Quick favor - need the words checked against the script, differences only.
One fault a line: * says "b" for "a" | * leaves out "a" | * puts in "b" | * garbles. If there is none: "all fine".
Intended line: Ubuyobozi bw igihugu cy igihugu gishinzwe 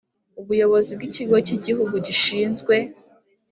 * says "ikigo" for "igihugu"